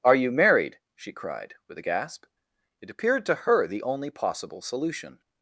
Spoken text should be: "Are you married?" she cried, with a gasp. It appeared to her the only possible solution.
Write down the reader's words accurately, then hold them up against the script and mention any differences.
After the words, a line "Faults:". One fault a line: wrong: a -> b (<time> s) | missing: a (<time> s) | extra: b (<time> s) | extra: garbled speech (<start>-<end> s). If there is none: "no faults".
"Are you married?" she cried, with a gasp. It appeared to her the only possible solution.
Faults:
no faults